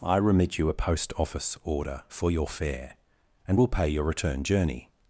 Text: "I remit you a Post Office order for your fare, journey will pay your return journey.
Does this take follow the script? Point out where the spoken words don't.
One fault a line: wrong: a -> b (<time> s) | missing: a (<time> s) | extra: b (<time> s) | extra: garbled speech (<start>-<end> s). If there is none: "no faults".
wrong: journey -> and (3.5 s)